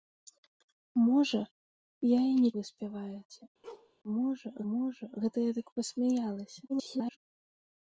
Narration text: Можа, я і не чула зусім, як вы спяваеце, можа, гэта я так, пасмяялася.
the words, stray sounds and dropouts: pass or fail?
fail